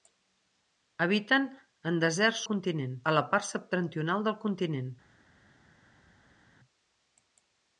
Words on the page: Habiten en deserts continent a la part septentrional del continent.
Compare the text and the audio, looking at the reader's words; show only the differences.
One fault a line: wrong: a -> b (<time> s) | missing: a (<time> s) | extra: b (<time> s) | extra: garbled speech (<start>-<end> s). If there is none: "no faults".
no faults